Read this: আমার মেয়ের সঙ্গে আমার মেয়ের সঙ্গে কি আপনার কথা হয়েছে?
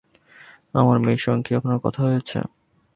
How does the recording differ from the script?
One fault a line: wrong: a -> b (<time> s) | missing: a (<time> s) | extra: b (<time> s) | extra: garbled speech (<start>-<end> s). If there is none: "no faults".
missing: আমার মেয়ের সঙ্গে (1.4 s)